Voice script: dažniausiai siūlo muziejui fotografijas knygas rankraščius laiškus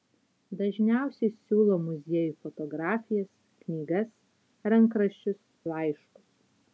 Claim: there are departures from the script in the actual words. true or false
false